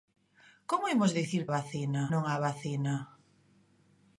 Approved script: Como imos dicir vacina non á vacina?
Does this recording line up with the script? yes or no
yes